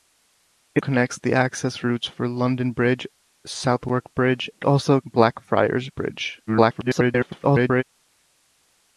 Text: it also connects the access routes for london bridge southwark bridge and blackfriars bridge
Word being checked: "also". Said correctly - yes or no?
no